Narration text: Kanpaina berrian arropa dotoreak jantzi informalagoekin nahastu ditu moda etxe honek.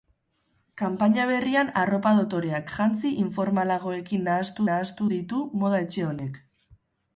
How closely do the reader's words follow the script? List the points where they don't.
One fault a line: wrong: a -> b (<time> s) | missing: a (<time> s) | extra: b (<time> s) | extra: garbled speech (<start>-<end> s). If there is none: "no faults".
extra: nahastu (4.7 s)